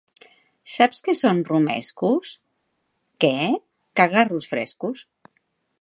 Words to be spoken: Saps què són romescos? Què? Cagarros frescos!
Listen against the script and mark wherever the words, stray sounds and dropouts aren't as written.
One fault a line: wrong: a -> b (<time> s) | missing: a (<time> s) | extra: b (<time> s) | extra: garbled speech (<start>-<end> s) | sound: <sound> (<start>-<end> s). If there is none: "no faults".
no faults